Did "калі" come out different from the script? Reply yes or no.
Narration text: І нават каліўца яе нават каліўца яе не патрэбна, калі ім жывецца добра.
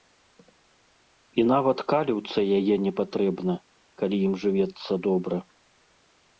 no